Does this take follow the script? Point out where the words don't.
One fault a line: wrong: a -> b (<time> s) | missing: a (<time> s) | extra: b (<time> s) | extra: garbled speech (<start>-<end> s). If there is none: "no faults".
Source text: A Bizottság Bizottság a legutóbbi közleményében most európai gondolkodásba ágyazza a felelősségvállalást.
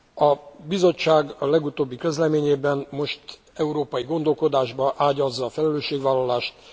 missing: Bizottság (1.4 s)